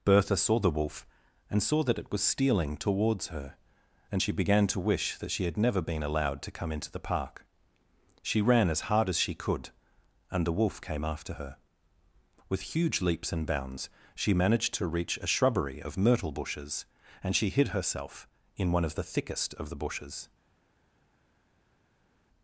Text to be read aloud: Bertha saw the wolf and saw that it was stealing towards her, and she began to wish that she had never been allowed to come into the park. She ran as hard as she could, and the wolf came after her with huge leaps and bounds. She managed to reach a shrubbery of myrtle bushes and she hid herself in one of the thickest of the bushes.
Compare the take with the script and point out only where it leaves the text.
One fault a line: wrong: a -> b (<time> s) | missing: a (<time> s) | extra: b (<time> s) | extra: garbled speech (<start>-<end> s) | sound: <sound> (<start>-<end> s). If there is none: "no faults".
no faults